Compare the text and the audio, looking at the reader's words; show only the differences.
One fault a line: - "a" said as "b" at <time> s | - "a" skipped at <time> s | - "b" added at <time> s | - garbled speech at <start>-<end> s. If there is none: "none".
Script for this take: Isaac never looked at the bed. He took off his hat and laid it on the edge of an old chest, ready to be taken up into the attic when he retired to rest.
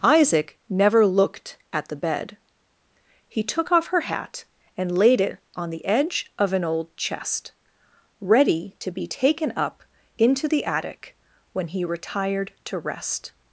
- "his" said as "her" at 3.9 s